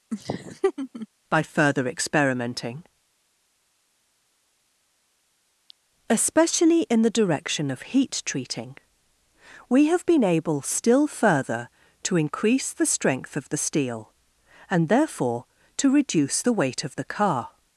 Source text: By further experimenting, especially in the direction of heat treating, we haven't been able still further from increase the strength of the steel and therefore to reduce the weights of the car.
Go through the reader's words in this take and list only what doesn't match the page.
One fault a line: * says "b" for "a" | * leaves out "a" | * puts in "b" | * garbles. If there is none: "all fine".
* says "have" for "haven't"
* says "to" for "from"
* says "weight" for "weights"